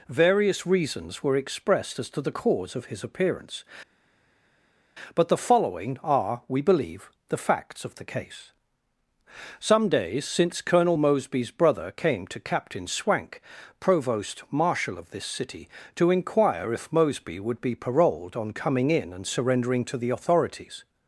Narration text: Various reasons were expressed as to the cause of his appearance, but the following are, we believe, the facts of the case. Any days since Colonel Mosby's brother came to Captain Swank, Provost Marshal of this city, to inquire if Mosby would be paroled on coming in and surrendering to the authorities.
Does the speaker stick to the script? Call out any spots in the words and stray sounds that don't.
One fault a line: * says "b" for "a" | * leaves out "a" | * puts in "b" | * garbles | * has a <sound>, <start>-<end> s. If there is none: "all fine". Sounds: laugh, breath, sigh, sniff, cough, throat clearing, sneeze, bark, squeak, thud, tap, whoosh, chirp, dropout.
* says "Some" for "Any"